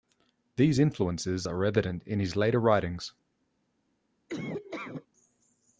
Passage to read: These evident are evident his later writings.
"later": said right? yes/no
yes